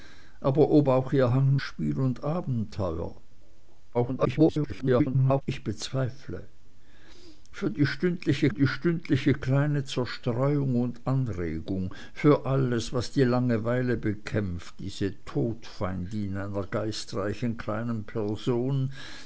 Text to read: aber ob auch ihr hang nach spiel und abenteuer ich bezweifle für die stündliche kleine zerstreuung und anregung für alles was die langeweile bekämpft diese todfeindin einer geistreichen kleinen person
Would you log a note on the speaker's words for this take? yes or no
yes